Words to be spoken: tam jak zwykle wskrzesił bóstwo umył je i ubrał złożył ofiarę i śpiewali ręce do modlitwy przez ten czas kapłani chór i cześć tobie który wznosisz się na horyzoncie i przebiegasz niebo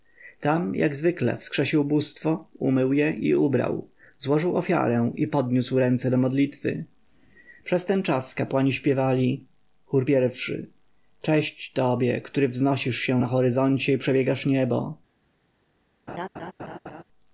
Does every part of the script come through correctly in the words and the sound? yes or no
no